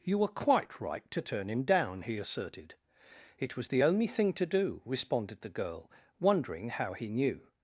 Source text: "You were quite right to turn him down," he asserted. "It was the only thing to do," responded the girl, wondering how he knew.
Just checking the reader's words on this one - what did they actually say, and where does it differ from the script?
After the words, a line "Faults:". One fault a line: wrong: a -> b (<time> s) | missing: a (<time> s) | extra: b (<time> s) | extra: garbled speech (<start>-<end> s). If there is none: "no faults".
"You were quite right to turn him down," he asserted. "It was the only thing to do," responded the girl, wondering how he knew.
Faults:
no faults